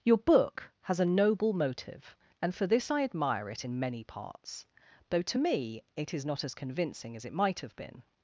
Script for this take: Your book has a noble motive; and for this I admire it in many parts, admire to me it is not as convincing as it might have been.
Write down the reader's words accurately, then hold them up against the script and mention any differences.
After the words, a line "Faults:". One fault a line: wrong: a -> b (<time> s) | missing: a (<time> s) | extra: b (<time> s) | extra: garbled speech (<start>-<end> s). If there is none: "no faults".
Your book has a noble motive; and for this I admire it in many parts, though to me it is not as convincing as it might have been.
Faults:
wrong: admire -> though (5.1 s)